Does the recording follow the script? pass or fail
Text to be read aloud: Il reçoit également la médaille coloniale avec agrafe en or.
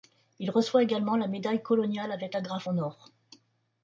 pass